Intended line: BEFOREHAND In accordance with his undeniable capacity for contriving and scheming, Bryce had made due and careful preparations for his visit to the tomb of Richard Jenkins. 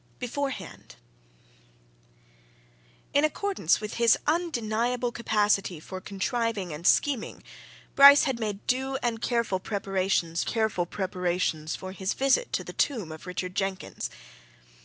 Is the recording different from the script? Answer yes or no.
yes